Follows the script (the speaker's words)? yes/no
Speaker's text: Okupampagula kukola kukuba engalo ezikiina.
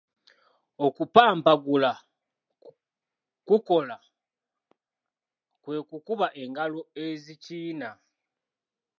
no